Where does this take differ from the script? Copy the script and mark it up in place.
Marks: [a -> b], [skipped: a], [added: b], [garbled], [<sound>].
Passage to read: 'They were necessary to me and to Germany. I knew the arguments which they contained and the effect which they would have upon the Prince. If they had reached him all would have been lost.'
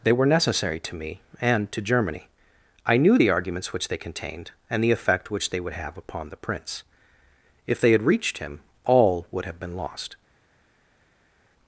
'They were necessary to me and to Germany. I knew the arguments which they contained and the effect which they would have upon the Prince. If they had reached him all would have been lost.'